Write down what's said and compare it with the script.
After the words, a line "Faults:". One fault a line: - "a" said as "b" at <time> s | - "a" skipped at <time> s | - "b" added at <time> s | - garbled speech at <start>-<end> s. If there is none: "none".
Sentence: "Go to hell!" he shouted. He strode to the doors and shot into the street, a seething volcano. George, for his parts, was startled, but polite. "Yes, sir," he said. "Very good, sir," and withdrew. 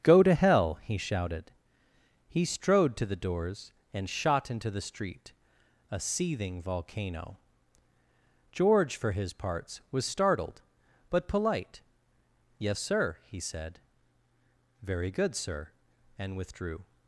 "Go to hell!" he shouted. He strode to the doors and shot into the street, a seething volcano. George, for his parts, was startled, but polite. "Yes, sir," he said. "Very good, sir," and withdrew.
Faults:
none